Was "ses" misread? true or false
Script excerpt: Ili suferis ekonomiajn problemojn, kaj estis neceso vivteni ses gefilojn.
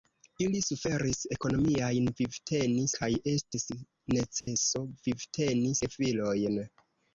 true